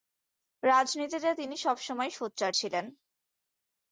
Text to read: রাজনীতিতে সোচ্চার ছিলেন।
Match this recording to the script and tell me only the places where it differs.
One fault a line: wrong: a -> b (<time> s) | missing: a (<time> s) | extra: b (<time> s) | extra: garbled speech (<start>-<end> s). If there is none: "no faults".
extra: তিনি সবসময়ই (1.3 s)